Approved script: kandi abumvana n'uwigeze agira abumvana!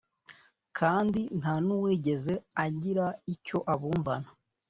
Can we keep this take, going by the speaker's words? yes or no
no